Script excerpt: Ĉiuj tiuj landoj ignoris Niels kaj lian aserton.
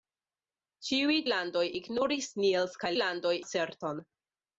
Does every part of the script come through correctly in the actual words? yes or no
no